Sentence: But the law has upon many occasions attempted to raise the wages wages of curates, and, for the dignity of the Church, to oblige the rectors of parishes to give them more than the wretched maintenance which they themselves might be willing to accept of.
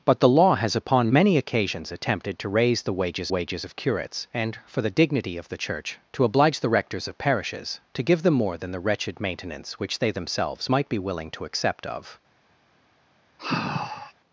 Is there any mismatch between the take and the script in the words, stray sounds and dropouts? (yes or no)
yes